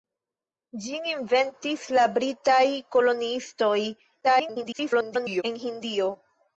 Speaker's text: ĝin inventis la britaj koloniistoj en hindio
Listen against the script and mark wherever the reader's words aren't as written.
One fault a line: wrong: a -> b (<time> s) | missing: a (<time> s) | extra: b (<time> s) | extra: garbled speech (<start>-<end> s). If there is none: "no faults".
extra: garbled speech (4.2-5.4 s)